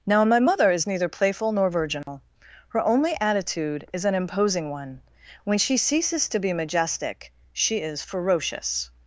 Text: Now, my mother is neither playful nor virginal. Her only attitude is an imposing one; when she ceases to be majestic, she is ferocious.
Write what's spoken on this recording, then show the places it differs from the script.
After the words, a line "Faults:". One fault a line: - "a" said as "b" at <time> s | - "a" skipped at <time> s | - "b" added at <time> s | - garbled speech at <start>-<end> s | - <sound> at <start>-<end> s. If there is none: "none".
Now, my mother is neither playful nor virginal. Her only attitude is an imposing one; when she ceases to be majestic, she is ferocious.
Faults:
- dropout at 2.0-2.1 s